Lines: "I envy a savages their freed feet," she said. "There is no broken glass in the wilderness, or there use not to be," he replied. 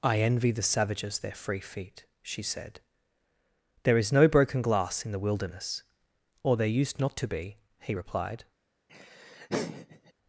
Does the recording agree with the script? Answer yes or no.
no